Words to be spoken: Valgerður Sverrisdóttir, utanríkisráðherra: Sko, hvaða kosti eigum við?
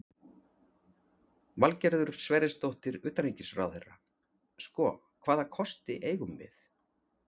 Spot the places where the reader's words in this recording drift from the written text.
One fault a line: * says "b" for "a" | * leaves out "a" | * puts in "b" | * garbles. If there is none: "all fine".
all fine